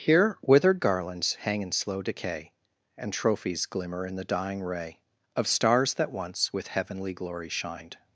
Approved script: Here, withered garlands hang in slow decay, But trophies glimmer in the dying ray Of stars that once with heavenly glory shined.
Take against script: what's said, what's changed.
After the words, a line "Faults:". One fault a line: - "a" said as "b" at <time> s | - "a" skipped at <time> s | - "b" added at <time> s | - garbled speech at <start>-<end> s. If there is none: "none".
Here, withered garlands hang in slow decay, And trophies glimmer in the dying ray Of stars that once with heavenly glory shined.
Faults:
- "But" said as "And" at 3.0 s